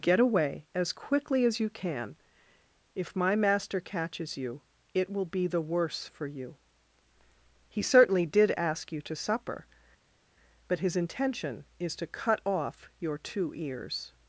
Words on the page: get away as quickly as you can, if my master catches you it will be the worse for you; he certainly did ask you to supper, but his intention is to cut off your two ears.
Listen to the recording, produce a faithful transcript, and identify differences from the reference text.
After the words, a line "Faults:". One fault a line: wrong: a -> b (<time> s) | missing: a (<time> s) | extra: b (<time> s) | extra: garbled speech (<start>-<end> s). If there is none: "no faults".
get away as quickly as you can, if my master catches you it will be the worse for you; he certainly did ask you to supper, but his intention is to cut off your two ears.
Faults:
no faults